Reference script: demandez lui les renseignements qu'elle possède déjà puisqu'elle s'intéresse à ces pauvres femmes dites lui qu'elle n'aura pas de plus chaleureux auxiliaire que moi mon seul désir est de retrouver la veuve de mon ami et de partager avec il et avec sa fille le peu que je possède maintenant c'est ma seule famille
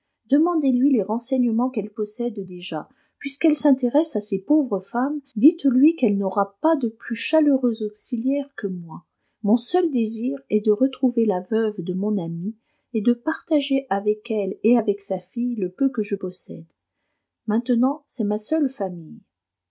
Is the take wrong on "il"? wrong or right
wrong